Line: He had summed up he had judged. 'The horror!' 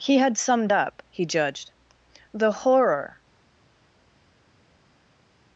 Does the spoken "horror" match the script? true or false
true